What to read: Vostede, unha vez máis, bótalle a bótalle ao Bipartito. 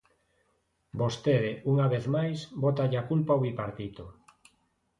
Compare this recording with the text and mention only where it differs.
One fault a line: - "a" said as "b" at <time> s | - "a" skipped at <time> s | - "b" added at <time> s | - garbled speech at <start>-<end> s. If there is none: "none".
- "bótalle" said as "culpa" at 3.1 s